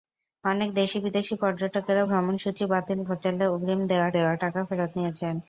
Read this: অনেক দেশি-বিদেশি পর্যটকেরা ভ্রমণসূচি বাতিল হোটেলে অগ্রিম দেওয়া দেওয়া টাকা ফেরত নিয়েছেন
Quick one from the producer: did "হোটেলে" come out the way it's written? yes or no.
yes